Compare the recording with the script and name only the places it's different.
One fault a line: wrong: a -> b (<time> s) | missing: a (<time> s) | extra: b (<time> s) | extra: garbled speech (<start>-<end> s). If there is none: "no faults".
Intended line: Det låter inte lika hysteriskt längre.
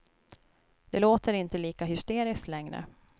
no faults